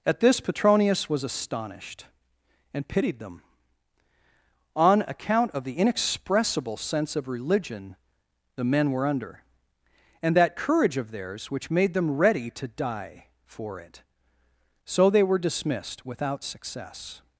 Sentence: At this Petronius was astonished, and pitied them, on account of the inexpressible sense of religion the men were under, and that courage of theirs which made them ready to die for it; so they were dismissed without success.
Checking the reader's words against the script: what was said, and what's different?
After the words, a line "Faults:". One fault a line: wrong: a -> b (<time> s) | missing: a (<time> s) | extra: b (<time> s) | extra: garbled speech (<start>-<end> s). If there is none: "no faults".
At this Petronius was astonished, and pitied them, on account of the inexpressible sense of religion the men were under, and that courage of theirs which made them ready to die for it; so they were dismissed without success.
Faults:
no faults